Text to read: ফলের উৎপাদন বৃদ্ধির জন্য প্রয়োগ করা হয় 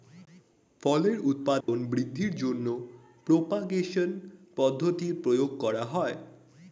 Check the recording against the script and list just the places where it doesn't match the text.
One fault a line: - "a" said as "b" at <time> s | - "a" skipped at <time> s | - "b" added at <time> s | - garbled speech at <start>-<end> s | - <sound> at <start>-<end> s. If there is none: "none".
- dropout at 1.6-1.7 s
- "প্রপাগেশন পদ্ধতির" added at 3.3 s